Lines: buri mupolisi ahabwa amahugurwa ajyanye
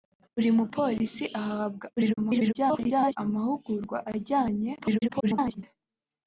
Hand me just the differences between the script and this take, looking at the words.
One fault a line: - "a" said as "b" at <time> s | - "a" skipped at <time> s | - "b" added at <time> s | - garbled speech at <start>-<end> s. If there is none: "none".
- garbled speech at 1.9-3.2 s
- garbled speech at 4.8-5.6 s